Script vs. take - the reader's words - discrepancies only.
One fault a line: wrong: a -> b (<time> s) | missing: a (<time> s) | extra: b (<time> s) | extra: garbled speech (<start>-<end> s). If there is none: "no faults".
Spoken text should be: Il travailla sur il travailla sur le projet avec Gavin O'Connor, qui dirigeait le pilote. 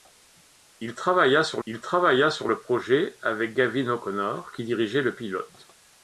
no faults